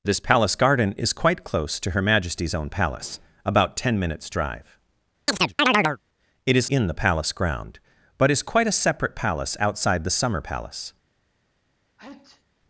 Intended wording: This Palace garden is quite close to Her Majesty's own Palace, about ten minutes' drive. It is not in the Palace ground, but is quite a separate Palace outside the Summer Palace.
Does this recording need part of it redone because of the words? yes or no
yes